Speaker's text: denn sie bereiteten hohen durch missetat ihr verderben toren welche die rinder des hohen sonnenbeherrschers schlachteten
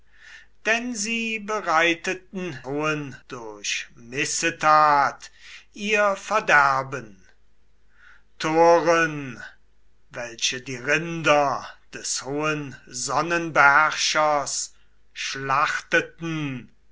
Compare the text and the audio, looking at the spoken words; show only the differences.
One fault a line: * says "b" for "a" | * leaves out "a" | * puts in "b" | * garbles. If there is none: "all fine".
all fine